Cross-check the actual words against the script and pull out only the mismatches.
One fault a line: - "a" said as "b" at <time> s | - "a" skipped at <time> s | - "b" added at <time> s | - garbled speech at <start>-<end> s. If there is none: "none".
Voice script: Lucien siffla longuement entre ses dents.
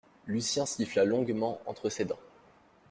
none